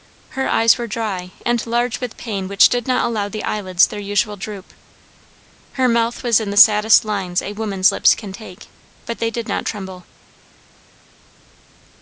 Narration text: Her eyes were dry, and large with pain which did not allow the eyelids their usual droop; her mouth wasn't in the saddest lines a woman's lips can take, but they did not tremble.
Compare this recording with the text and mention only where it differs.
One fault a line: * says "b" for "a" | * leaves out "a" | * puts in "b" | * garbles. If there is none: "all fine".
* says "was" for "wasn't"